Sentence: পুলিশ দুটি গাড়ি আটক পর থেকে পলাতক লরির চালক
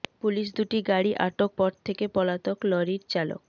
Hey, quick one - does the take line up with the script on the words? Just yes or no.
yes